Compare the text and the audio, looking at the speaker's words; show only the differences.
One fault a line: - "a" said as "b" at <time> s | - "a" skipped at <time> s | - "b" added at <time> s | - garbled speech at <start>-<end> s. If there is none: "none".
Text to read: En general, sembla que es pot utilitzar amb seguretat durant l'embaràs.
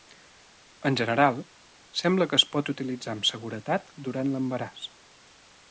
none